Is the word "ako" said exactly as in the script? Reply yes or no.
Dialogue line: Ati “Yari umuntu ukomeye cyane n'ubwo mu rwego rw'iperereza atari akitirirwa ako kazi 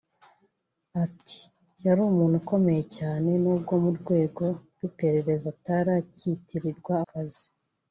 no